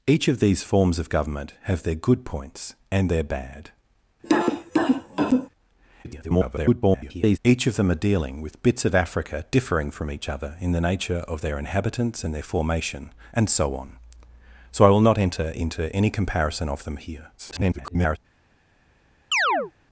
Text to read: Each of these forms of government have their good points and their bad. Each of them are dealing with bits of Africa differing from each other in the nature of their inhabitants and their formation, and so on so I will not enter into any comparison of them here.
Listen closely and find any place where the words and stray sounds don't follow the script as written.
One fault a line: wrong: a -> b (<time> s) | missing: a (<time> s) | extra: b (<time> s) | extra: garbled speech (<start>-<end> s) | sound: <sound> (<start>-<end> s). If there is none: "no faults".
sound: cough (4.2-5.5 s)
extra: garbled speech (6.0-7.4 s)
extra: garbled speech (17.4-18.2 s)
sound: chirp (19.3-19.7 s)